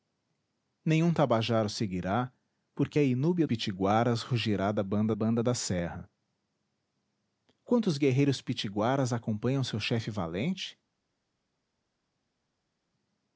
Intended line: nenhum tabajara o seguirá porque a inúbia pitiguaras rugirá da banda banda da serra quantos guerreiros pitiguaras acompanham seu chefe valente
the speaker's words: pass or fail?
pass